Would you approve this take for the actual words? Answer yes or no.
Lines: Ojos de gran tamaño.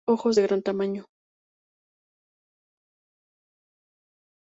yes